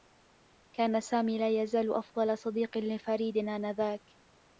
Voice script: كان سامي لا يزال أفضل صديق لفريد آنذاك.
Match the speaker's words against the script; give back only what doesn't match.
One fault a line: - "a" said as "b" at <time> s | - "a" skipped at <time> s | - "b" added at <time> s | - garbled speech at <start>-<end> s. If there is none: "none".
none